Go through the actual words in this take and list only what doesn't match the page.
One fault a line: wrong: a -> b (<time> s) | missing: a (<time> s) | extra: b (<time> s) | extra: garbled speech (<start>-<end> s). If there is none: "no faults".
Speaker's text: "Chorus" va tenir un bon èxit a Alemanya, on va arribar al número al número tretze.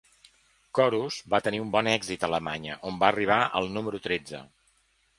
missing: al número (4.0 s)